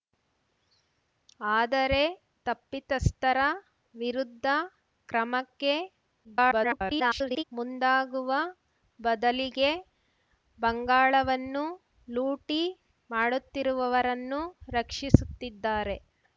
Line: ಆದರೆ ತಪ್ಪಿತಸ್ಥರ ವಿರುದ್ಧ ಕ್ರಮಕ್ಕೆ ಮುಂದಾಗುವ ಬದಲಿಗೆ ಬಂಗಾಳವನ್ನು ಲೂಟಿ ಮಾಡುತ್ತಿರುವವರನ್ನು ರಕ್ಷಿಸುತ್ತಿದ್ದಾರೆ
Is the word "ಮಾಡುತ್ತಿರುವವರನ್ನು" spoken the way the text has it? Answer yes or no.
yes